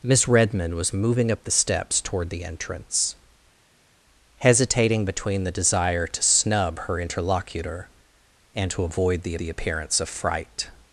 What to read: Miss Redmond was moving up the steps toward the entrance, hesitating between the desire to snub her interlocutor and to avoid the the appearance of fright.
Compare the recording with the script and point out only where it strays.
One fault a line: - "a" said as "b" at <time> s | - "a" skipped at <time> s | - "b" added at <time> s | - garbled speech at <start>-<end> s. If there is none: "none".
none